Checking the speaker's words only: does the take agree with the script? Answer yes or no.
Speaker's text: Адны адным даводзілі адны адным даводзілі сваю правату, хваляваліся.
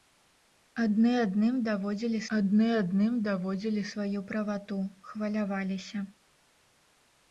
yes